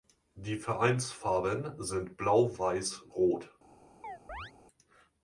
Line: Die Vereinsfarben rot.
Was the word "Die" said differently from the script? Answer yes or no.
no